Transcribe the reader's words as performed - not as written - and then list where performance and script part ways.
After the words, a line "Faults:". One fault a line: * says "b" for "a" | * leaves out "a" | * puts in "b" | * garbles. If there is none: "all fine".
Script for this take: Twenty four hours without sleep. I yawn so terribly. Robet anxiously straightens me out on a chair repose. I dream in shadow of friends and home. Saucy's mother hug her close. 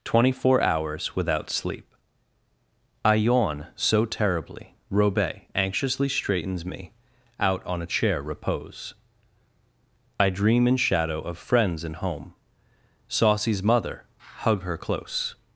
Twenty four hours without sleep. I yawn so terribly. Robet anxiously straightens me out on a chair repose. I dream in shadow of friends and home. Saucy's mother hug her close.
Faults:
all fine